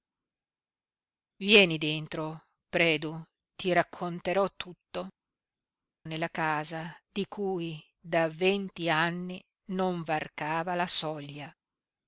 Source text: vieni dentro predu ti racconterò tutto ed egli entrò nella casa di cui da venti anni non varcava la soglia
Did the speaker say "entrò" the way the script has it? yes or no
no